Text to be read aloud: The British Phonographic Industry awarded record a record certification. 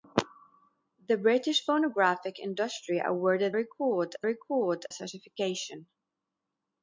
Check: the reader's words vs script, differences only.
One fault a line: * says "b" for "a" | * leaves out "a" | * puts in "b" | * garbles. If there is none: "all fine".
all fine